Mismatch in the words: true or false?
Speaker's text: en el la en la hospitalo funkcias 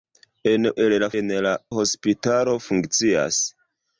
false